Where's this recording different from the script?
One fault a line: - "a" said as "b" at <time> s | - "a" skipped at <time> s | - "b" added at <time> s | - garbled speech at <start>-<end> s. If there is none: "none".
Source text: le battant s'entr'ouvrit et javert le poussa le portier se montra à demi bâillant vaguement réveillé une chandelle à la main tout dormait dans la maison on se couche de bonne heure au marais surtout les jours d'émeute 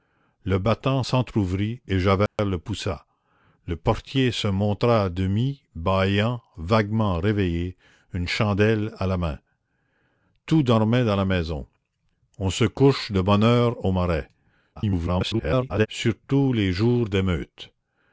- garbled speech at 14.8-15.9 s